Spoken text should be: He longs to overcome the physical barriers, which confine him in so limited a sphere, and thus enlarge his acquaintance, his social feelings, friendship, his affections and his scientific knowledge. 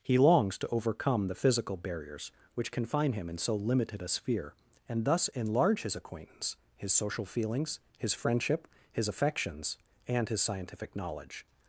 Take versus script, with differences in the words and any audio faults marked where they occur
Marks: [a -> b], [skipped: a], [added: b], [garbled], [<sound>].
He longs to overcome the physical barriers, which confine him in so limited a sphere, and thus enlarge his acquaintance, his social feelings, [added: his] friendship, his affections and his scientific knowledge.